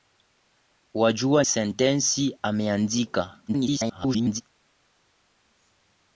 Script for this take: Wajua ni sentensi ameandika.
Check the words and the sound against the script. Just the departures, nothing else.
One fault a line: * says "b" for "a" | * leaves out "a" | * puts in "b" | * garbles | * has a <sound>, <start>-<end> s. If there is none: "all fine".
* leaves out "ni"
* garbles